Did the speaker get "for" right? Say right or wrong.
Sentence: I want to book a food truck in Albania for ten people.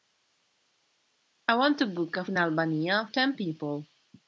wrong